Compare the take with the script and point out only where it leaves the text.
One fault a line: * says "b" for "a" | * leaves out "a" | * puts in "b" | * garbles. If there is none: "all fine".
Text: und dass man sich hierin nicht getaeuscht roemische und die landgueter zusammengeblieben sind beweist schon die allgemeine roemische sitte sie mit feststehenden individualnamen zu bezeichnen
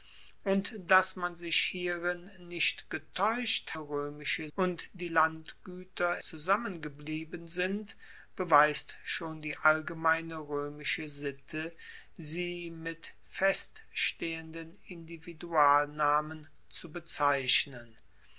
all fine